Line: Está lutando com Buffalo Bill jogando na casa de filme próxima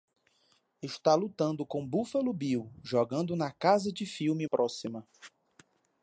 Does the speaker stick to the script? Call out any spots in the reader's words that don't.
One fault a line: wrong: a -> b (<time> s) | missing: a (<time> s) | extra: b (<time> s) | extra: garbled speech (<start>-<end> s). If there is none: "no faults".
no faults